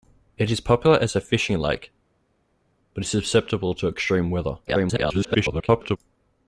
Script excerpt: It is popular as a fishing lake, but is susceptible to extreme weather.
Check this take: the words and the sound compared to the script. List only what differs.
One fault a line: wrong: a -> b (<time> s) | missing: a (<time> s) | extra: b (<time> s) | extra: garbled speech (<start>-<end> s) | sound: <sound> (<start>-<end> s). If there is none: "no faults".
extra: garbled speech (4.7-6.0 s)